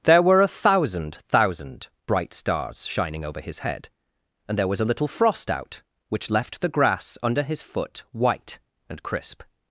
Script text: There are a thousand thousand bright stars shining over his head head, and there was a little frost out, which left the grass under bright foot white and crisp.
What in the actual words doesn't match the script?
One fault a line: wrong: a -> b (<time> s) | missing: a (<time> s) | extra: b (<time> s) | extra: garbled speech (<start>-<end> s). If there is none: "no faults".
wrong: are -> were (0.2 s)
missing: head (3.9 s)
wrong: bright -> his (7.4 s)